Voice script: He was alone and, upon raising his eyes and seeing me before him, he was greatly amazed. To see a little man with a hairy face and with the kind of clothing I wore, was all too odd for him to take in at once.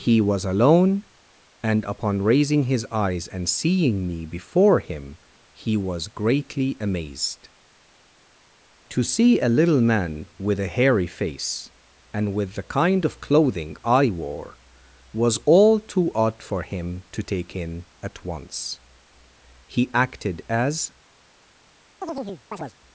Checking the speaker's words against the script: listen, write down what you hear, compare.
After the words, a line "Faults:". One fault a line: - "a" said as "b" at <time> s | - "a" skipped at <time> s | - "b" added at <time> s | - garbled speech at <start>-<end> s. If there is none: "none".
He was alone and, upon raising his eyes and seeing me before him, he was greatly amazed. To see a little man with a hairy face and with the kind of clothing I wore, was all too odd for him to take in at once. He acted as
Faults:
- "He acted as" added at 19.7 s